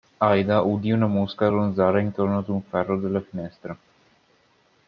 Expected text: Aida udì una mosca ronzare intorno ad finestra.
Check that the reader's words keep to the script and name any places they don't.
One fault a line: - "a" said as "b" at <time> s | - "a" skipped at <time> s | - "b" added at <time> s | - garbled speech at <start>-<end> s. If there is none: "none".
- "un ferro della" added at 2.5 s